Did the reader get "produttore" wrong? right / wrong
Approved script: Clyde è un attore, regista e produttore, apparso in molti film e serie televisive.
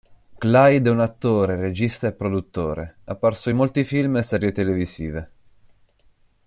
right